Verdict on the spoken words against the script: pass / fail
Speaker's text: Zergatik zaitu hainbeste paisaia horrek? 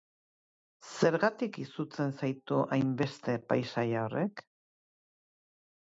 fail